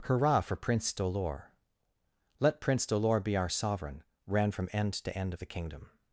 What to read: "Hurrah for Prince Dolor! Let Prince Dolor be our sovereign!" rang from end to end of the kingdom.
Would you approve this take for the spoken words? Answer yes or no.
no